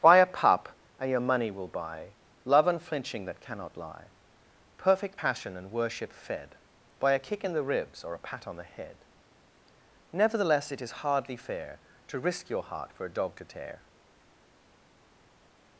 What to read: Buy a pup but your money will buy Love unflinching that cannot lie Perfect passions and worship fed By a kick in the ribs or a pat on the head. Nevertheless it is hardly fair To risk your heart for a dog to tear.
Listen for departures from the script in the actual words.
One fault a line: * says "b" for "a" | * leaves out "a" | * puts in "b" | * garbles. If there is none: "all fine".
* says "and" for "but"
* says "passion" for "passions"